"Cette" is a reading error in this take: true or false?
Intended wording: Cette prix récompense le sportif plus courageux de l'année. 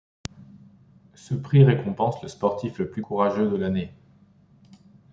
true